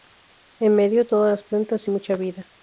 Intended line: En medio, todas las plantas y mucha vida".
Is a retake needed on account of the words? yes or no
no